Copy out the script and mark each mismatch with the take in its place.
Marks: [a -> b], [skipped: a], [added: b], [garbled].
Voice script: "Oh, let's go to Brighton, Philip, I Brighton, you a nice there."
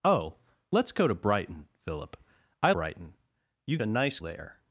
"Oh, let's go to Brighton, Philip, I Brighton, you a nice there."